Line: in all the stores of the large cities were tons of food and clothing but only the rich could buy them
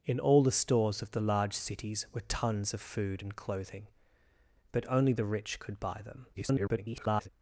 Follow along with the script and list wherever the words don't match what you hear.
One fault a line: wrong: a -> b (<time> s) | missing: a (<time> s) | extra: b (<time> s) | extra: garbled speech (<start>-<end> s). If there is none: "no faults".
extra: garbled speech (6.3-7.3 s)